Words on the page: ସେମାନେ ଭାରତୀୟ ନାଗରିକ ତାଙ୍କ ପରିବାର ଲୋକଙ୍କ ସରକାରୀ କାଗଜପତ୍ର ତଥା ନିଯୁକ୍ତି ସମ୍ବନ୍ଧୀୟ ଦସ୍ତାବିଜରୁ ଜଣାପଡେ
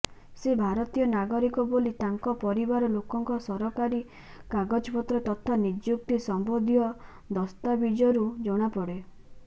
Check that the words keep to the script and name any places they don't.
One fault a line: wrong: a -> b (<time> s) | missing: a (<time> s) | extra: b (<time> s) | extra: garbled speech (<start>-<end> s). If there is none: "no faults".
wrong: ସେମାନେ -> ସେ (0.4 s)
extra: ବୋଲି (1.7 s)